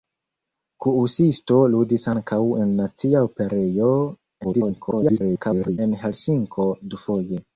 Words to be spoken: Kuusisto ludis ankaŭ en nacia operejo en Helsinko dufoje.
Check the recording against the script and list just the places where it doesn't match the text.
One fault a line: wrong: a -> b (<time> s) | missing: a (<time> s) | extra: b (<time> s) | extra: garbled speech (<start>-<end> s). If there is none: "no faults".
extra: garbled speech (4.4-5.8 s)